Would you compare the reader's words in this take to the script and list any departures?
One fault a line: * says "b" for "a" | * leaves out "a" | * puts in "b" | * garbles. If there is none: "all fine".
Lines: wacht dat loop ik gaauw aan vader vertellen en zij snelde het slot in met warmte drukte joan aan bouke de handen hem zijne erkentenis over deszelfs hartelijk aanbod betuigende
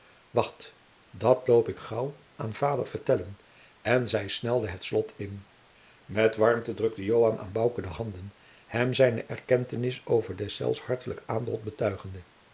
all fine